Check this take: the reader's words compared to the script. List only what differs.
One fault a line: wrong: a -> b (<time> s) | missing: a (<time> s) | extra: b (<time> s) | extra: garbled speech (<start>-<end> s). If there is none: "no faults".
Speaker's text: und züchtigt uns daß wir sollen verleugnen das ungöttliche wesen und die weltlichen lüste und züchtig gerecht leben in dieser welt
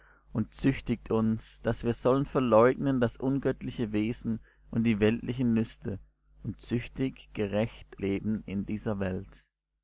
no faults